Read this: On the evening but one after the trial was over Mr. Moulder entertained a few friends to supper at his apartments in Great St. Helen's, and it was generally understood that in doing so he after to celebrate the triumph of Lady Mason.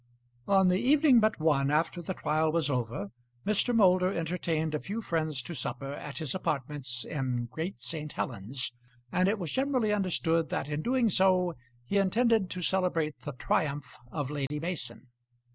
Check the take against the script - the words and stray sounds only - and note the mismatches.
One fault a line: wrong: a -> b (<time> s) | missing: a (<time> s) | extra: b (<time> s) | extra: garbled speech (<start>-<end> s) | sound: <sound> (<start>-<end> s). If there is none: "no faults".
wrong: after -> intended (12.0 s)
sound: dropout (14.5-14.5 s)